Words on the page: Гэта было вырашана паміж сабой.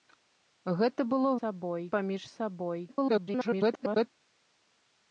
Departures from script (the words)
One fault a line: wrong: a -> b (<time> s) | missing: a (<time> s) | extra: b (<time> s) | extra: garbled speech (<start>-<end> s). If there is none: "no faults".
wrong: вырашана -> сабой (1.4 s)
extra: garbled speech (2.9-4.1 s)